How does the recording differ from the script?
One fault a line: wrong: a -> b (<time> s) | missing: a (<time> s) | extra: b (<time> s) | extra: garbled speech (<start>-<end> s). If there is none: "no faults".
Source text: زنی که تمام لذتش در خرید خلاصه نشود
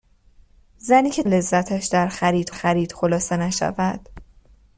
missing: تمام (1.2 s)
extra: خرید (2.5 s)